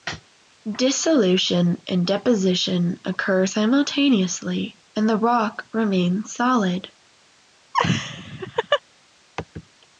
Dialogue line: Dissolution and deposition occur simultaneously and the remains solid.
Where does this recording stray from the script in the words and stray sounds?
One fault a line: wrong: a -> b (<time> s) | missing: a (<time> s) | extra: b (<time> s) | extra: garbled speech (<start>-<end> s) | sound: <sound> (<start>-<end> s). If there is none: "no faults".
extra: rock (5.2 s)
sound: laugh (7.7-8.8 s)